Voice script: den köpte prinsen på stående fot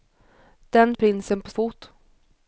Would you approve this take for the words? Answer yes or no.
no